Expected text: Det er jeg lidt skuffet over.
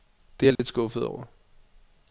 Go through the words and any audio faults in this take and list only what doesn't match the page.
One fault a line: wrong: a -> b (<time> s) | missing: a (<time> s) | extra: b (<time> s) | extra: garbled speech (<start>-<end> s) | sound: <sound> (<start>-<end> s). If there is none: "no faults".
sound: dropout (0.6-0.6 s)